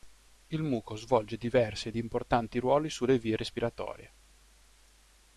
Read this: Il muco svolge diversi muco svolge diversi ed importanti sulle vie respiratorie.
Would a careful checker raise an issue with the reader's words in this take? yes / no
yes